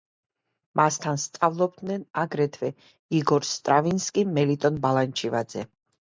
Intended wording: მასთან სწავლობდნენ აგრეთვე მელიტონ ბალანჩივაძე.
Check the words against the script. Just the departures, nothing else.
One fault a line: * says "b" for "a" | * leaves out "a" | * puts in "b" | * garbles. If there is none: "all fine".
* puts in "იგორ სტრავინსკი"